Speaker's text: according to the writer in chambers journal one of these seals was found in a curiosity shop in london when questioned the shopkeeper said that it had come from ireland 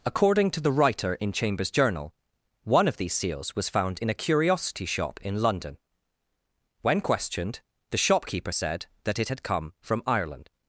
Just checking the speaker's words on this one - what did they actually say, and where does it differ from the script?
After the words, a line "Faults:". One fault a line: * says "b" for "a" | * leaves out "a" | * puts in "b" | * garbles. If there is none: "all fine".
according to the writer in chambers journal one of these seals was found in a curiosity shop in london when questioned the shopkeeper said that it had come from ireland
Faults:
all fine